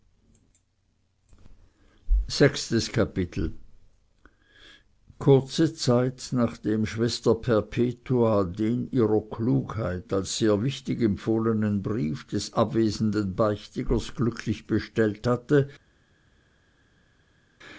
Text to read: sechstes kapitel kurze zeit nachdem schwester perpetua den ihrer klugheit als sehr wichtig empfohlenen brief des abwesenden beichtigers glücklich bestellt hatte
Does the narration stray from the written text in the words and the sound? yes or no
no